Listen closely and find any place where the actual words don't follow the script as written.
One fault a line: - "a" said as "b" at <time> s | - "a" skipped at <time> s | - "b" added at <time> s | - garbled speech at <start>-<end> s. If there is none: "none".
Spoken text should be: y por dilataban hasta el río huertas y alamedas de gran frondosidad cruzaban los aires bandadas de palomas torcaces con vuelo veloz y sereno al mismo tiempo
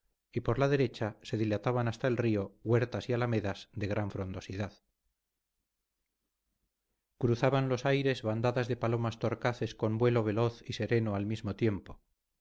- "la derecha se" added at 0.6 s